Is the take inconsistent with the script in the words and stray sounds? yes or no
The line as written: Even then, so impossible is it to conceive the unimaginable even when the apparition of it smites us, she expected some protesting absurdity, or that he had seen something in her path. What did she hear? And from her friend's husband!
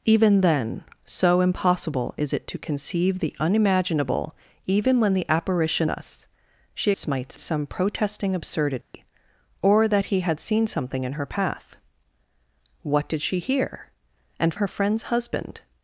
yes